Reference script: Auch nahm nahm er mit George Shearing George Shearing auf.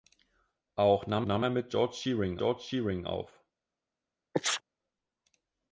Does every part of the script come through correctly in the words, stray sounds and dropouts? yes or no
no